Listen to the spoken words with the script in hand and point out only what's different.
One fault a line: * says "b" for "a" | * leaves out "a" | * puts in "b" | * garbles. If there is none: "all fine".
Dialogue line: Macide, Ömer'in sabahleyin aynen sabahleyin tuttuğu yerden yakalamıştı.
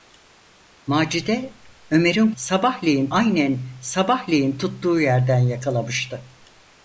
all fine